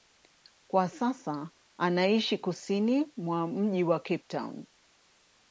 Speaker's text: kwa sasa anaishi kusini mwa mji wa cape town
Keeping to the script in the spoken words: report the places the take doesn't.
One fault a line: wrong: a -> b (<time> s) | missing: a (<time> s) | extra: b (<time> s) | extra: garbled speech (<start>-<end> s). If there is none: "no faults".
no faults